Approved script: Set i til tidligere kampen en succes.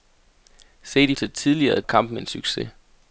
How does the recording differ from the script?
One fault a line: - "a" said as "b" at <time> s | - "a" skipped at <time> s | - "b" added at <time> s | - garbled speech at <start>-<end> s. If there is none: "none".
none